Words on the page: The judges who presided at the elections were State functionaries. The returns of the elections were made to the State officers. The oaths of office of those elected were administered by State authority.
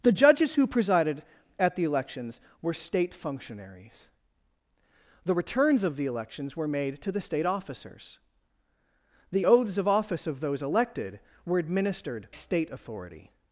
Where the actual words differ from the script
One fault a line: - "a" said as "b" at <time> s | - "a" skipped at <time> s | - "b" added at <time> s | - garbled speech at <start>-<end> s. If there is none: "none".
- "by" skipped at 12.3 s